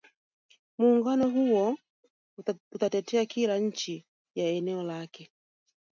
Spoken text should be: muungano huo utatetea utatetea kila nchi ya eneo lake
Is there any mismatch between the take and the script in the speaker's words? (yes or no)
yes